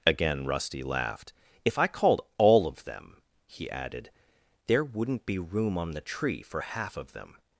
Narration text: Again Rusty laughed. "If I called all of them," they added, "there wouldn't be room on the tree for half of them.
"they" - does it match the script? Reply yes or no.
no